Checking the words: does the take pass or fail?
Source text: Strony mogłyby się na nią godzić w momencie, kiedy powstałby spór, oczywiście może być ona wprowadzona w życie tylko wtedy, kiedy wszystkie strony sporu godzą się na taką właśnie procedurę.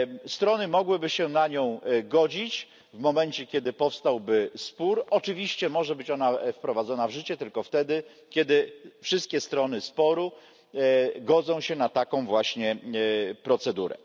pass